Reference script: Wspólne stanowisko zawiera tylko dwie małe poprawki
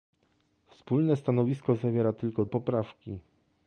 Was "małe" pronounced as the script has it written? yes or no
no